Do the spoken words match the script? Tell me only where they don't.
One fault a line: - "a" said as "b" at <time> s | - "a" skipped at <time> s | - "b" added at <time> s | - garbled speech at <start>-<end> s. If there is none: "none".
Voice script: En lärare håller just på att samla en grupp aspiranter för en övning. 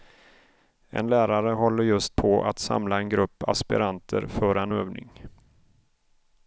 none